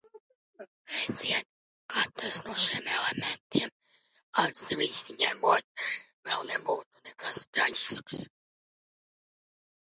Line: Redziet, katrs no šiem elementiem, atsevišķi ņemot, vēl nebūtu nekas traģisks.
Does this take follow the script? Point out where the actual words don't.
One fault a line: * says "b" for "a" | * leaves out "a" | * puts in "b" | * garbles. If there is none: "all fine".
all fine